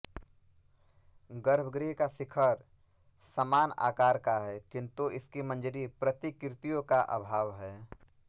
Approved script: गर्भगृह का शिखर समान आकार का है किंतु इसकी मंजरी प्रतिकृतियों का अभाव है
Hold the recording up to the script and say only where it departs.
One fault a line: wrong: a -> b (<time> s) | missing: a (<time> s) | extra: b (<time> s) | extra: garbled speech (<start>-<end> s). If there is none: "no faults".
no faults